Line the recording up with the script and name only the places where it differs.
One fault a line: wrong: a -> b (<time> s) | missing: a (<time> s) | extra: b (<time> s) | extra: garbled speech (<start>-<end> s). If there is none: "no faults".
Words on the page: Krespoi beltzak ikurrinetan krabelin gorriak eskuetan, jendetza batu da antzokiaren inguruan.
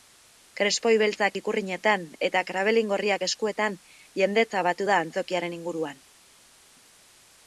extra: eta (2.3 s)